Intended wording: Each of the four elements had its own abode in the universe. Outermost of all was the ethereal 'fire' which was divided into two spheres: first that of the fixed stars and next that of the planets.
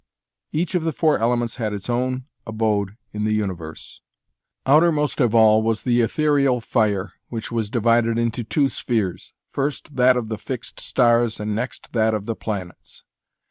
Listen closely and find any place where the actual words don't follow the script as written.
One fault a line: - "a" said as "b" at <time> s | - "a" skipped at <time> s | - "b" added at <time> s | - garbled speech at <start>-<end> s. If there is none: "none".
none